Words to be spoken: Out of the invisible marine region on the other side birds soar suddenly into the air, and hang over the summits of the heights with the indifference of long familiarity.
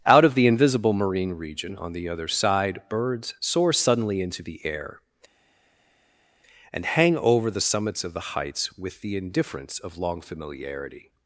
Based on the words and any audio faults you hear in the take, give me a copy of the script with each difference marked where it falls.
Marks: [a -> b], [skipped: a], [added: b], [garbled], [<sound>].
Out of the invisible marine region on the other side birds soar suddenly into the air, and hang over the summits of the heights with the indifference of long familiarity.